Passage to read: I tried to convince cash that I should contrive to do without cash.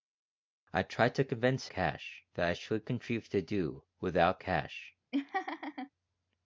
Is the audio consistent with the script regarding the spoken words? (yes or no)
yes